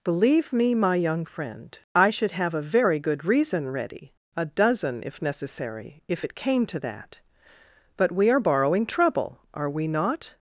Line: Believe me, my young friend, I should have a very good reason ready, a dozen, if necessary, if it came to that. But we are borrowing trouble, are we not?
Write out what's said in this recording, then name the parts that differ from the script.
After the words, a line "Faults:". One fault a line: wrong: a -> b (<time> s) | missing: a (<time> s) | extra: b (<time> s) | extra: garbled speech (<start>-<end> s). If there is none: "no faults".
Believe me, my young friend, I should have a very good reason ready, a dozen, if necessary, if it came to that. But we are borrowing trouble, are we not?
Faults:
no faults